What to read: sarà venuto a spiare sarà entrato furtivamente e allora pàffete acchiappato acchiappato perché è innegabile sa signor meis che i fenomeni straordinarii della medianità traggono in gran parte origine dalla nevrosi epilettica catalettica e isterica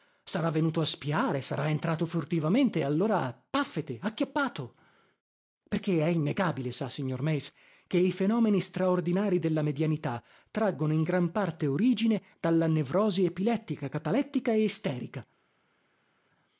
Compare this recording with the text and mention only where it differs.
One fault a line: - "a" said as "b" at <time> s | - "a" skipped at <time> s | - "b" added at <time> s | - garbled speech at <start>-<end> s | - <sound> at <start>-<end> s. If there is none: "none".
- "acchiappato" skipped at 4.7 s